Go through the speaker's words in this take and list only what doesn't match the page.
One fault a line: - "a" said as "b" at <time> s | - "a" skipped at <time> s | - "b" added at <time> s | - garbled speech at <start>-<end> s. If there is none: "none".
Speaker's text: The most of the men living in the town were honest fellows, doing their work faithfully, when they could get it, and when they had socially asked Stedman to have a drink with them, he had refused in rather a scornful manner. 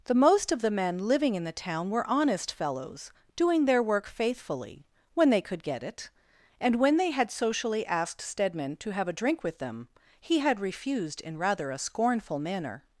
none